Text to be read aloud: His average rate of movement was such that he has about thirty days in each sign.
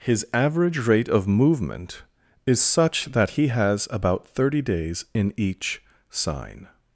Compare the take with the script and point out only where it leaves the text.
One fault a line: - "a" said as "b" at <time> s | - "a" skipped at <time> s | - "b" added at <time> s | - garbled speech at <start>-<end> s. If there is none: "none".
- "was" said as "is" at 2.5 s